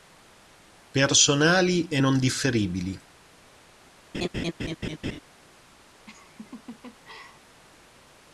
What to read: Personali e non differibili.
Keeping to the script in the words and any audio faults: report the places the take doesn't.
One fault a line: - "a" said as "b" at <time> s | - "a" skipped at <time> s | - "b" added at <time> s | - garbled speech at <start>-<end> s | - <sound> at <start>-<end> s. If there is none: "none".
- laugh at 4.1-5.2 s
- laugh at 6.1-7.6 s